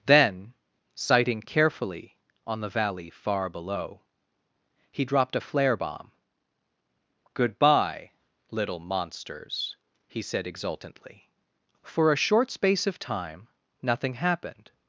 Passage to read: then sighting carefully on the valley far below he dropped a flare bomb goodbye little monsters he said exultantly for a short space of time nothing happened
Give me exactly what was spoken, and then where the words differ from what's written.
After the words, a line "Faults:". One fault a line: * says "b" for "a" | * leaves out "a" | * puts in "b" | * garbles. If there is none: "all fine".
then sighting carefully on the valley far below he dropped a flare bomb goodbye little monsters he said exultantly for a short space of time nothing happened
Faults:
all fine